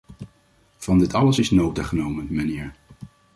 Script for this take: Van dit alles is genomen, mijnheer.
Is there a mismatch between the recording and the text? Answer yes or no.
yes